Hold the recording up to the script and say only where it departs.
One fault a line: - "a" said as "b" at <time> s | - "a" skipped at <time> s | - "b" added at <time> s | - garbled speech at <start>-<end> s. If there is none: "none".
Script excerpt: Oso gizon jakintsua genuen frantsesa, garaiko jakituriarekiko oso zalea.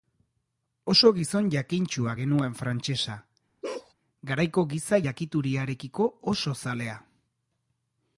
- "giza" added at 4.8 s